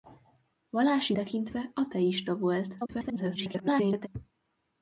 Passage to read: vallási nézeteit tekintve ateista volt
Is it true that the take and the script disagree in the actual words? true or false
true